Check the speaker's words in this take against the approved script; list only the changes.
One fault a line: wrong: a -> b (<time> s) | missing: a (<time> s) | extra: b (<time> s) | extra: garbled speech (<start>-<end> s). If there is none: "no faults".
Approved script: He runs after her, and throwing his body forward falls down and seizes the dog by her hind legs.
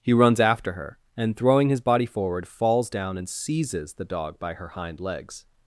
no faults